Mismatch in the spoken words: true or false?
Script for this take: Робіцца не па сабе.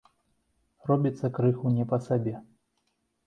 true